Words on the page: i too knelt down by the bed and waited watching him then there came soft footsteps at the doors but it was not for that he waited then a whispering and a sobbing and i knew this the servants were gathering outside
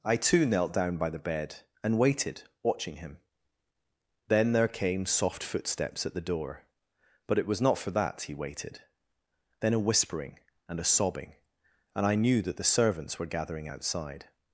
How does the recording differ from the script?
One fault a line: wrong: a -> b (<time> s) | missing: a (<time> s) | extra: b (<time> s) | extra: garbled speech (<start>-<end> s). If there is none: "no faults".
wrong: doors -> door (6.2 s)
wrong: this -> that (12.4 s)